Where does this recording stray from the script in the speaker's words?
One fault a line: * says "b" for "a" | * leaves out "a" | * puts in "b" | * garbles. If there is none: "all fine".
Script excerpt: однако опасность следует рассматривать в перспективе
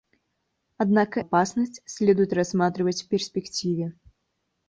all fine